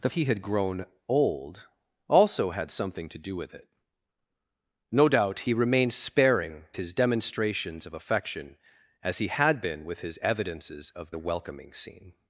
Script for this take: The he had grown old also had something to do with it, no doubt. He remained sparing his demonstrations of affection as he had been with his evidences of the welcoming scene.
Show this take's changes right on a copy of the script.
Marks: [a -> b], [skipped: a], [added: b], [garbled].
The he had grown old also had something to do with it, no doubt. He remained sparing his demonstrations of affection as he had been with his evidences of the welcoming scene.